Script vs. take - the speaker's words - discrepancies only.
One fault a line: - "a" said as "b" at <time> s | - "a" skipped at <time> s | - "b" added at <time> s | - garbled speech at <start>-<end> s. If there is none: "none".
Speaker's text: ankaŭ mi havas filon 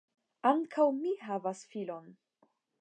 none